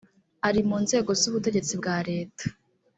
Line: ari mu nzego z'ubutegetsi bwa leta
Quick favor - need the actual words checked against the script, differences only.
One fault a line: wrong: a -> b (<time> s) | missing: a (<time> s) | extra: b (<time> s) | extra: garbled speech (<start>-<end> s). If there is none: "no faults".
no faults